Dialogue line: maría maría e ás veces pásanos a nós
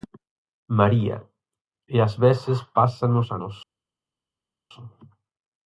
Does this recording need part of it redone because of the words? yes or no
yes